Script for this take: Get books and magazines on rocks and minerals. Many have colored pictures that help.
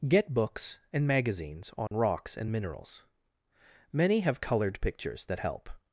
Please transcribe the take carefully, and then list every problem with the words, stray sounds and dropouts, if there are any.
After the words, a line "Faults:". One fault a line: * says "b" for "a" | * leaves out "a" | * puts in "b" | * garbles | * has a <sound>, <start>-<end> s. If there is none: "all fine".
Get books and magazines on rocks and minerals. Many have colored pictures that help.
Faults:
* has a dropout, 1.9-1.9 s